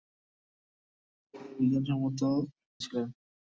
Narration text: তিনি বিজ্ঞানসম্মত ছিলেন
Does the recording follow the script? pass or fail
pass